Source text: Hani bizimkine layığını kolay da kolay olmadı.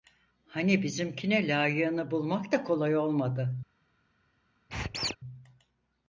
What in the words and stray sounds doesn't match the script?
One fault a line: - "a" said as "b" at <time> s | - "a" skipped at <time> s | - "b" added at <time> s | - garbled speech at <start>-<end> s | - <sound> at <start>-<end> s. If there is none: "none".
- "kolay" said as "bulmak" at 2.1 s
- squeak at 4.7-5.2 s